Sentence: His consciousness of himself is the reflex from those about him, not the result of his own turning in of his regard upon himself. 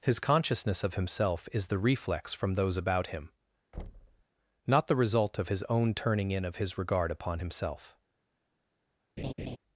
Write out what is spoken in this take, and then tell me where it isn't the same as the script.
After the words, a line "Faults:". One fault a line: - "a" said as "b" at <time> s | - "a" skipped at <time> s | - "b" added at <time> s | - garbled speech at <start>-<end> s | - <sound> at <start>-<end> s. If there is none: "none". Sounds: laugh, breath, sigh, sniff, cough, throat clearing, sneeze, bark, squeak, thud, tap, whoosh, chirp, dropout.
His consciousness of himself is the reflex from those about him, not the result of his own turning in of his regard upon himself.
Faults:
- thud at 3.7-4.2 s
- laugh at 9.2-9.6 s